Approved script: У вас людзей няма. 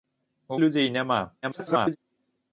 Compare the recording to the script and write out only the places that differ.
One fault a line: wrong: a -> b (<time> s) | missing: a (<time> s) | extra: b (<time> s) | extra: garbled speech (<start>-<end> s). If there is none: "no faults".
missing: вас (0.6 s)
extra: garbled speech (1.4-2.0 s)